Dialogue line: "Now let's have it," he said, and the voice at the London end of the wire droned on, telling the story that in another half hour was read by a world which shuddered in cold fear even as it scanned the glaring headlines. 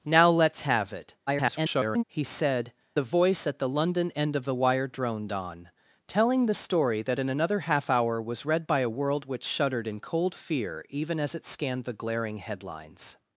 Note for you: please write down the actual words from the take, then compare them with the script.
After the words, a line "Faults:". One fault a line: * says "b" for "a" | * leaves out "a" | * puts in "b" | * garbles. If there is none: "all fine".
"Now let's have it," [garbled] he said, the voice at the London end of the wire droned on, telling the story that in another half hour was read by a world which shuddered in cold fear even as it scanned the glaring headlines.
Faults:
* garbles
* leaves out "and"